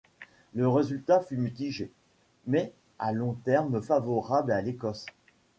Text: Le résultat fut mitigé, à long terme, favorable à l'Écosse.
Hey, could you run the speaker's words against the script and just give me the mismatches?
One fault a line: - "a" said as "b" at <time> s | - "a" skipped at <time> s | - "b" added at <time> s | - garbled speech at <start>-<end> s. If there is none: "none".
- "mais" added at 2.5 s